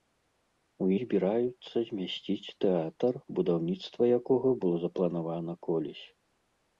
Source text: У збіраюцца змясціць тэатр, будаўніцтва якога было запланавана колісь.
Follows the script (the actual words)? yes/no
yes